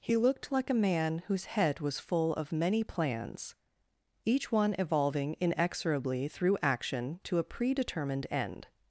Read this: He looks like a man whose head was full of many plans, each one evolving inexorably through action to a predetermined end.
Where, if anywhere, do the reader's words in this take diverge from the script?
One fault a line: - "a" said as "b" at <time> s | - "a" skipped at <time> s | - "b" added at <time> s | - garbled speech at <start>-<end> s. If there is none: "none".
- "looks" said as "looked" at 0.2 s